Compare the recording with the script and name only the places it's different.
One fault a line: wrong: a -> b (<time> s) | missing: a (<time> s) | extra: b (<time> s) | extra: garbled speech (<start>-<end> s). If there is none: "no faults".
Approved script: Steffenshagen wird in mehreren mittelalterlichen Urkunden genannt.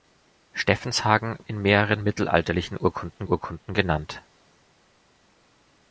missing: wird (1.4 s)
extra: Urkunden (3.2 s)